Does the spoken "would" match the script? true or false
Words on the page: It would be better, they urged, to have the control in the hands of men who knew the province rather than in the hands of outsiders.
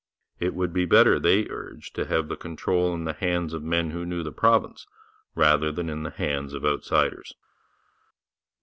true